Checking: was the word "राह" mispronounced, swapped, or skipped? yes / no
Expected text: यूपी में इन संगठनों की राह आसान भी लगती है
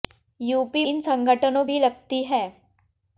yes